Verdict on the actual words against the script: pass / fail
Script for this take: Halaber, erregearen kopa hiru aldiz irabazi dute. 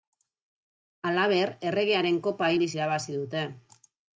fail